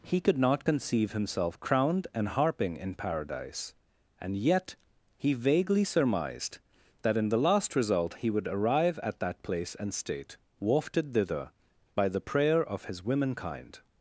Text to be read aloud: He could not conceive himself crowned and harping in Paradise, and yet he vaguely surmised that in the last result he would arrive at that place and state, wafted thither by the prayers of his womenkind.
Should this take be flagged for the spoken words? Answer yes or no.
yes